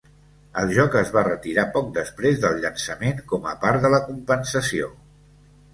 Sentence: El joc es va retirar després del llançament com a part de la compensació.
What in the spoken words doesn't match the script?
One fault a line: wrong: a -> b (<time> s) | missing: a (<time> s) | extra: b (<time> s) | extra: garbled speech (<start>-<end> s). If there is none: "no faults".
extra: poc (1.8 s)